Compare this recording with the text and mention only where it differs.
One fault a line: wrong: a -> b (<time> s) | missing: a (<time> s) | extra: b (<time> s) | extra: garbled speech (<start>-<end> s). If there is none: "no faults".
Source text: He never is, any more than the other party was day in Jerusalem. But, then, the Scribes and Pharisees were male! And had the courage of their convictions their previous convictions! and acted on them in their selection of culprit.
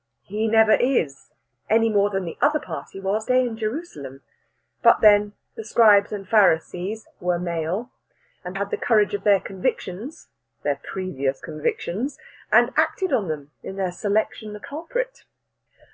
no faults